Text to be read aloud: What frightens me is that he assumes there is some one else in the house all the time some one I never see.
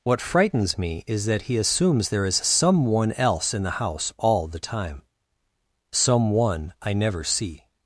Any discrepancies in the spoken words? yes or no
no